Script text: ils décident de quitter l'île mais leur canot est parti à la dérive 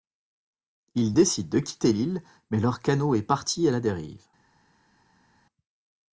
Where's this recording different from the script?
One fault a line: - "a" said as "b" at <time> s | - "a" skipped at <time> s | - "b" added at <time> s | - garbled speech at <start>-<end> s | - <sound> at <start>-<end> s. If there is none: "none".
none